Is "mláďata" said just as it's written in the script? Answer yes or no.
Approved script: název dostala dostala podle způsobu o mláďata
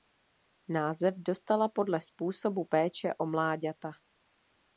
yes